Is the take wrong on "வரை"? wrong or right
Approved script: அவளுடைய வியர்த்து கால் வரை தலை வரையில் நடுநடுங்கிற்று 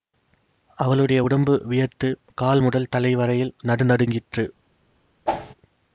wrong